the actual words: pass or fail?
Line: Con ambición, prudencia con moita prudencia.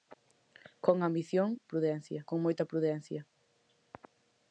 pass